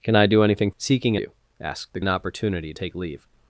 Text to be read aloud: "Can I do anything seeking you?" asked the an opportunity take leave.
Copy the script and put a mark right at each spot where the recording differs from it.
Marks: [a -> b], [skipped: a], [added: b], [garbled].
"Can I do anything seeking you?" asked the an opportunity take leave.